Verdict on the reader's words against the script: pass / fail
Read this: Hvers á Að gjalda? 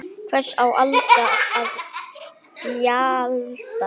fail